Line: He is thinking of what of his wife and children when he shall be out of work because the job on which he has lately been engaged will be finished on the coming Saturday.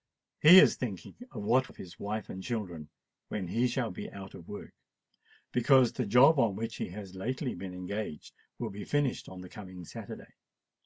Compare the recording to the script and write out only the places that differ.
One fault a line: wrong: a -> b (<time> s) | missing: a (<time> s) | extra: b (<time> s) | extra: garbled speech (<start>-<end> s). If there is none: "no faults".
no faults